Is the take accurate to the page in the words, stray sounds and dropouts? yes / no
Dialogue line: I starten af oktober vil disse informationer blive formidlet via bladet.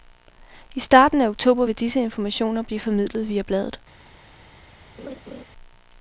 no